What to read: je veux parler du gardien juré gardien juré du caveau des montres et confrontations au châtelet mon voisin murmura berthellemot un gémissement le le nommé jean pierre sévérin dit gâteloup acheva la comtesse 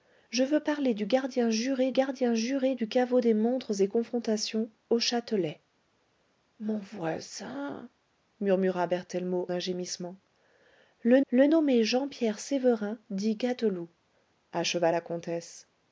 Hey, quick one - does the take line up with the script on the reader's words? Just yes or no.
yes